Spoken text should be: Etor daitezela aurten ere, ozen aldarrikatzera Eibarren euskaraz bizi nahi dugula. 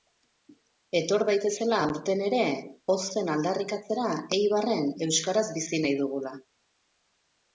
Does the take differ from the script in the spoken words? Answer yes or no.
no